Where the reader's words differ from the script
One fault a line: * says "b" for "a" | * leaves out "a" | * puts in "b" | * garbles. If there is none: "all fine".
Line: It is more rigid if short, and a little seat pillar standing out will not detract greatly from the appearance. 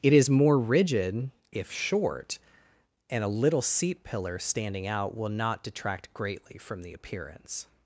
all fine